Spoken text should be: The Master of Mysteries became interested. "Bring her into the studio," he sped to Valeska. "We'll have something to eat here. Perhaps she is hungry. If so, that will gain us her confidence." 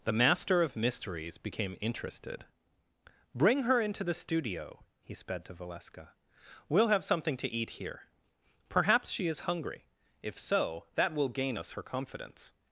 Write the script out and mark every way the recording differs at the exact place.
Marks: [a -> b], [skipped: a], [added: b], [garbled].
The Master of Mysteries became interested. "Bring her into the studio," he sped to Valeska. "We'll have something to eat here. Perhaps she is hungry. If so, that will gain us her confidence."